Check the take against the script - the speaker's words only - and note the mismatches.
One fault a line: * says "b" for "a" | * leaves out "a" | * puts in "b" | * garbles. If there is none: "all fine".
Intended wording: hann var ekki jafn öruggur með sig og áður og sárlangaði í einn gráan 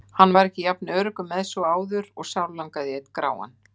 all fine